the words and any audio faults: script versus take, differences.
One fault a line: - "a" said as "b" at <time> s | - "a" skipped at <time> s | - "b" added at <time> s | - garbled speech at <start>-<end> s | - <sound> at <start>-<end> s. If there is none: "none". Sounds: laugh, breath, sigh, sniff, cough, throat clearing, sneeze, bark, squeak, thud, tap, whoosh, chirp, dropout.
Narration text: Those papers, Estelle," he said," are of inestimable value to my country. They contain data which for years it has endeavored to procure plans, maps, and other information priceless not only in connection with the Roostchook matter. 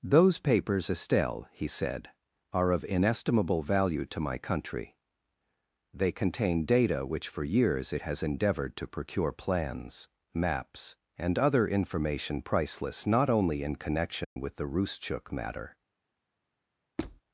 - dropout at 14.2-14.4 s
- squeak at 17.0-17.2 s